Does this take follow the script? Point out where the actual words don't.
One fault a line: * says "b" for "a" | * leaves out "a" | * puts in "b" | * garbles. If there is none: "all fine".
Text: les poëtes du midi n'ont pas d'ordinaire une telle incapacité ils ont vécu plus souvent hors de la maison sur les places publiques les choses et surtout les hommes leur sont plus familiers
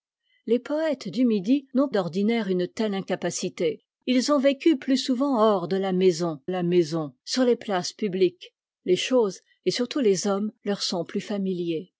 * leaves out "pas"
* puts in "la maison"